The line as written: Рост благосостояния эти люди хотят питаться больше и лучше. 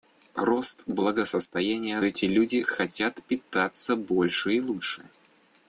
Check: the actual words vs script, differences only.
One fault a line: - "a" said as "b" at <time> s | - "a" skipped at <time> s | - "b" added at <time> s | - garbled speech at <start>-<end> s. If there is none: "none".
none